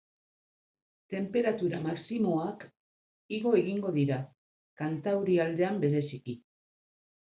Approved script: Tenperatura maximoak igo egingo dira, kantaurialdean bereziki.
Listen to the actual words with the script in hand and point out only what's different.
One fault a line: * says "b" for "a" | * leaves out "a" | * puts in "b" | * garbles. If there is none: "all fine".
all fine